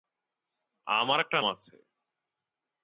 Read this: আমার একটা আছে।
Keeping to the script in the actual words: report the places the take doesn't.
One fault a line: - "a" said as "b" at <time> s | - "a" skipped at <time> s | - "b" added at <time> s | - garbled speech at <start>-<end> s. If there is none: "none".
none